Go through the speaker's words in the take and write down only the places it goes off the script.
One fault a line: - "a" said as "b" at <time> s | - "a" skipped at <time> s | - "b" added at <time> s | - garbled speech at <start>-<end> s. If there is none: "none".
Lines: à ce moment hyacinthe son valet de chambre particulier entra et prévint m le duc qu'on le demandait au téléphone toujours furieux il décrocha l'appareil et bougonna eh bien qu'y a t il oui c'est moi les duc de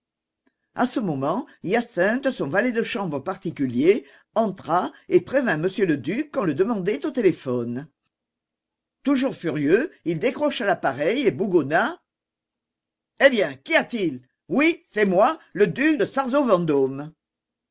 - "les" said as "le" at 15.5 s